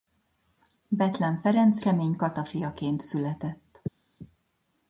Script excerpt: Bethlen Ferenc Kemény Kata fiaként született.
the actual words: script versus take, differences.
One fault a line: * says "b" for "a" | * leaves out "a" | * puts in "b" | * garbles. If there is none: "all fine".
all fine